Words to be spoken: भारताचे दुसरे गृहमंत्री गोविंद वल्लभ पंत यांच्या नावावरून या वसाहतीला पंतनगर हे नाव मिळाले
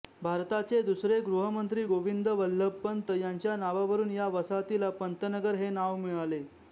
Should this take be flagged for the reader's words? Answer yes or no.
no